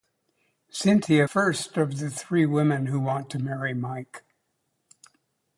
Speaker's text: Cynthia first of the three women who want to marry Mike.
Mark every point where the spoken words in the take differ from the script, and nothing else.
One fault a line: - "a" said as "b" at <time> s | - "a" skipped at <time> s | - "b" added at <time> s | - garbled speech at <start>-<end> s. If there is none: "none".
none